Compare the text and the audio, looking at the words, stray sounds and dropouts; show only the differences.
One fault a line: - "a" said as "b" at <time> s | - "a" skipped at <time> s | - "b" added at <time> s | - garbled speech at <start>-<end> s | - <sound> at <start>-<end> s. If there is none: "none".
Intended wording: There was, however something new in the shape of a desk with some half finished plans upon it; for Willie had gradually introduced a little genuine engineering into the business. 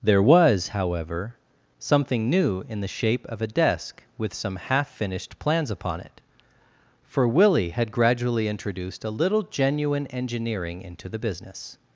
none